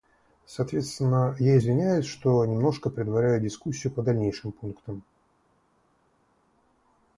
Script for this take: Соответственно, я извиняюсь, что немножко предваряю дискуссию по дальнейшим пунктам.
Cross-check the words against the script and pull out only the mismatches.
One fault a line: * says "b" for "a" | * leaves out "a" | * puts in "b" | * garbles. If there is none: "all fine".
all fine